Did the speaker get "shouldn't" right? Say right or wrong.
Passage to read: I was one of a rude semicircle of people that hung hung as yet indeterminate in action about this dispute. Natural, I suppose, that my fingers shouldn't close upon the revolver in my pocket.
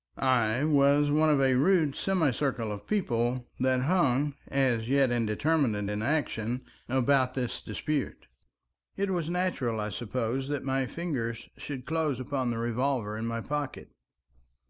wrong